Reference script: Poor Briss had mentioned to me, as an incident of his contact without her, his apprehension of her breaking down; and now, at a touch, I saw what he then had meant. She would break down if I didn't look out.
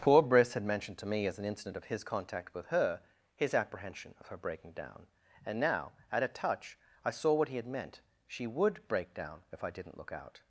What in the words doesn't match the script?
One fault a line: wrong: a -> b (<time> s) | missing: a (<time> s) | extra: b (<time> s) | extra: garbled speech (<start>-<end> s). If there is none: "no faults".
wrong: without -> with (2.5 s)
missing: then (7.6 s)